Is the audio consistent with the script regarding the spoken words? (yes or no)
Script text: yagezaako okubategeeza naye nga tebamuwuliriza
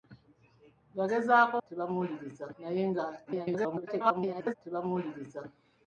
no